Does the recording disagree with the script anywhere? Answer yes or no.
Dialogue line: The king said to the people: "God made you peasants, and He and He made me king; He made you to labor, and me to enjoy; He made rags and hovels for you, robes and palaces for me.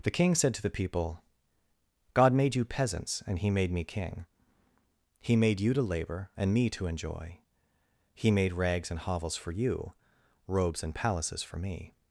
yes